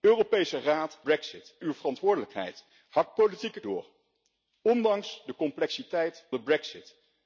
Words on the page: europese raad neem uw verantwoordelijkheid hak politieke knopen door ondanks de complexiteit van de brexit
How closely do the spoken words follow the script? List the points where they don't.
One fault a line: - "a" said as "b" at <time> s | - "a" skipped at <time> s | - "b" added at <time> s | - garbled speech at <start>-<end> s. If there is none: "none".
- "neem" said as "brexit" at 1.0 s
- "knopen" skipped at 3.6 s
- "van" skipped at 6.3 s